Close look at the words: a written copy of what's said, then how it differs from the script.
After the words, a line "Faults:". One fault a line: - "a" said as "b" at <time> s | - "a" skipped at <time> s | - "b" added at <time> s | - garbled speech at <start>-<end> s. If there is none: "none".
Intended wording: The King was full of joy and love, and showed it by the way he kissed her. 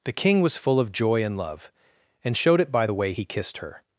The King was full of joy and love, and showed it by the way he kissed her.
Faults:
none